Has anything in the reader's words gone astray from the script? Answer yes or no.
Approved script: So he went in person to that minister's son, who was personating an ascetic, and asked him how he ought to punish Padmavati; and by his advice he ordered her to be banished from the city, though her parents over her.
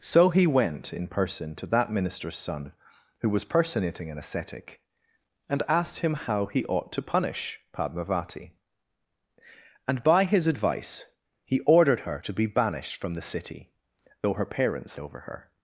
no